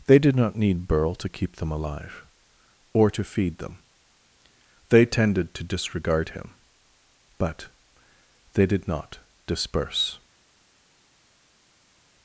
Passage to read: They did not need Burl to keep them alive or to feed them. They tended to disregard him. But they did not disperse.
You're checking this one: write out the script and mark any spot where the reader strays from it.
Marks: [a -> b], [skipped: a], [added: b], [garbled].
They did not need Burl to keep them alive or to feed them. They tended to disregard him. But they did not disperse.